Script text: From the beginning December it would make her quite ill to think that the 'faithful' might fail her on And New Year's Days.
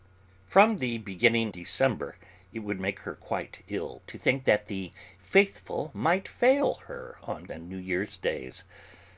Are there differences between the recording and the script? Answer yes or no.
no